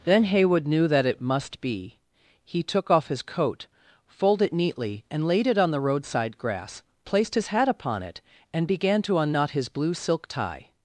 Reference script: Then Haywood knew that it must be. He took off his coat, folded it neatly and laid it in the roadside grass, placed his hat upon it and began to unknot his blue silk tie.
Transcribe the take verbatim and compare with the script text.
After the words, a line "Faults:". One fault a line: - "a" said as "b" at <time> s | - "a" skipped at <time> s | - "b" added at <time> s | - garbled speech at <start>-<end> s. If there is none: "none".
Then Haywood knew that it must be. He took off his coat, folded it neatly and laid it on the roadside grass, placed his hat upon it and began to unknot his blue silk tie.
Faults:
- "in" said as "on" at 5.6 s